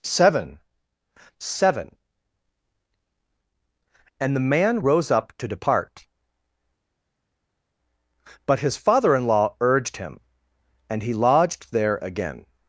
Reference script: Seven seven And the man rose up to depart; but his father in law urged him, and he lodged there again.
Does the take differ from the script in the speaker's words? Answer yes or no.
no